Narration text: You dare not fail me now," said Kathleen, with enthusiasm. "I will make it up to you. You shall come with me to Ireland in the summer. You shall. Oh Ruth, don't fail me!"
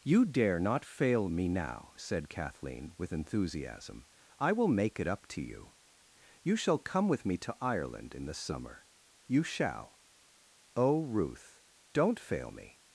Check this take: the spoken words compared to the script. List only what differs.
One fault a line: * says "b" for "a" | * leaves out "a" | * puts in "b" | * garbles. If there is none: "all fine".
all fine